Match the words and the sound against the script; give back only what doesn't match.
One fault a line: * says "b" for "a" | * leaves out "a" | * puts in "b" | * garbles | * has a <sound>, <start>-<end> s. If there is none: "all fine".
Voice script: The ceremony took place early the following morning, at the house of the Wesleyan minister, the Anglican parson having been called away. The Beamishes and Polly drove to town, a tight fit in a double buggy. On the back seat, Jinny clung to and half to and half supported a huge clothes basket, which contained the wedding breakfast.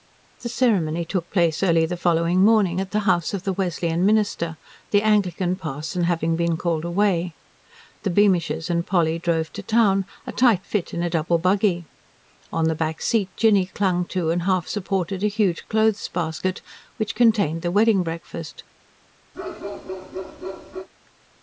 * leaves out "to and half"
* has a bark, 19.3-20.9 s